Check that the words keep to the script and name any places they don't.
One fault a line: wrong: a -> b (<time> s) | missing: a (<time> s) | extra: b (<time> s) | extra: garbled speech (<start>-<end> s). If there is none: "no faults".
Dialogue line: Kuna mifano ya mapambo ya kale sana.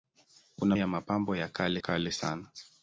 missing: mifano (0.8 s)
extra: kale (1.8 s)